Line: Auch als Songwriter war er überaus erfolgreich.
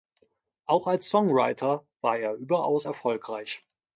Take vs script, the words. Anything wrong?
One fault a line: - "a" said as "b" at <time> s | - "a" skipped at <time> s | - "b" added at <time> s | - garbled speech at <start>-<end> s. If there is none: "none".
none